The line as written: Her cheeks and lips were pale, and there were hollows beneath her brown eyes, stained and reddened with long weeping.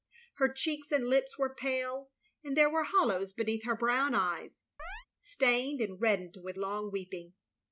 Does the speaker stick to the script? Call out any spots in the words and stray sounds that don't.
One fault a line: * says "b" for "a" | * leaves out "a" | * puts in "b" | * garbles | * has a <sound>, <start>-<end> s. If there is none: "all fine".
* has a chirp, 4.8-5.1 s